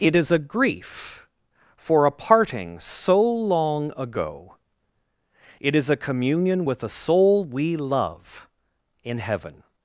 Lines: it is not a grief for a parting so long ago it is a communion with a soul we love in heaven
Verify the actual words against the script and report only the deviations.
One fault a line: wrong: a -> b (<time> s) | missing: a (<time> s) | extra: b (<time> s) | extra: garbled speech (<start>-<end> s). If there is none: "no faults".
missing: not (0.3 s)